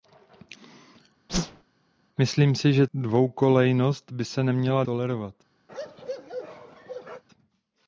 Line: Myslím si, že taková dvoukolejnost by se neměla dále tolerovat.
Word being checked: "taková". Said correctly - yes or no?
no